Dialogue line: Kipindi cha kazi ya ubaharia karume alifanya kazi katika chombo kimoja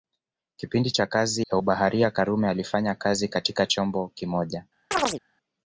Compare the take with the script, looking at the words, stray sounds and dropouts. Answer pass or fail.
fail